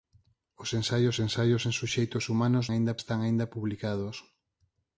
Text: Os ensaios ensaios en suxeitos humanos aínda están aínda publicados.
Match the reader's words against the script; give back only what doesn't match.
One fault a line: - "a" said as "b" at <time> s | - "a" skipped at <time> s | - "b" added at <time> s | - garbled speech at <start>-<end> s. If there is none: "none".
none